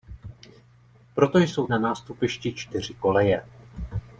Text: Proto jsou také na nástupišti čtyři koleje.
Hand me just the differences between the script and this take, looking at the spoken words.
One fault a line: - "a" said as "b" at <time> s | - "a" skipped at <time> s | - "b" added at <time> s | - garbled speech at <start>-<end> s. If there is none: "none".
- "také" skipped at 1.7 s